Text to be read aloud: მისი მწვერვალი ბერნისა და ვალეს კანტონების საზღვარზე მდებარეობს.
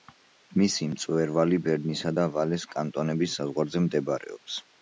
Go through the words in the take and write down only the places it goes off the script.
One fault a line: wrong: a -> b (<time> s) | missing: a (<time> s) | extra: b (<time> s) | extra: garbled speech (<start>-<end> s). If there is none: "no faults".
no faults